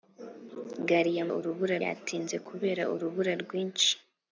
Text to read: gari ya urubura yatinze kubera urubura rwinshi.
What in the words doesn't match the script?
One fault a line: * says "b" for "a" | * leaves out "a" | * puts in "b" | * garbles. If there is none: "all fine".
all fine